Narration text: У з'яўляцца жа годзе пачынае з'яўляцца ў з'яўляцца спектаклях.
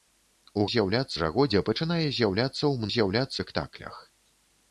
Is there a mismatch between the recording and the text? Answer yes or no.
no